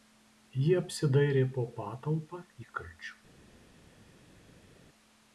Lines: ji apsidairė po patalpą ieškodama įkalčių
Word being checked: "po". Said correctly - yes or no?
yes